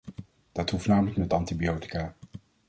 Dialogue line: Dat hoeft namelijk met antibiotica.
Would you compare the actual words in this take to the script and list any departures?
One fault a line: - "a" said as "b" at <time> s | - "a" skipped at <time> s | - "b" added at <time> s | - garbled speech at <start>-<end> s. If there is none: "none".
none